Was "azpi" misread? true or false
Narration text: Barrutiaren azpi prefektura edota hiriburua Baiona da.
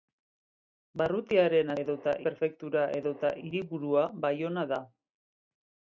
true